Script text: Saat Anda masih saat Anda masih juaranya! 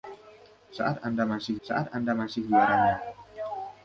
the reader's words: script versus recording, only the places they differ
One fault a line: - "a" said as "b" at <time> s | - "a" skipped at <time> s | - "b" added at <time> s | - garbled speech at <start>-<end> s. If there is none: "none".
none